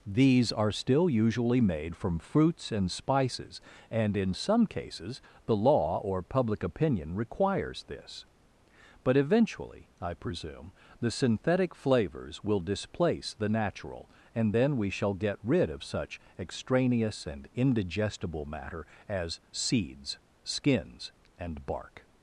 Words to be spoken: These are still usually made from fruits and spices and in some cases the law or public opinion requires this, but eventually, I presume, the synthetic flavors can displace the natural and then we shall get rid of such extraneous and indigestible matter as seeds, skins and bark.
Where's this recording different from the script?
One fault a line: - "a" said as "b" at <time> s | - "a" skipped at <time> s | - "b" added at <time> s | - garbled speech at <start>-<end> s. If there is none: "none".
- "can" said as "will" at 12.4 s